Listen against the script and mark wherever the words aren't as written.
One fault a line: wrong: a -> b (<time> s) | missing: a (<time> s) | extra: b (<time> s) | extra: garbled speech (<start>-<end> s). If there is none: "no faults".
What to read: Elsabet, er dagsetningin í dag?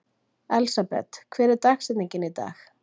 extra: hver (1.4 s)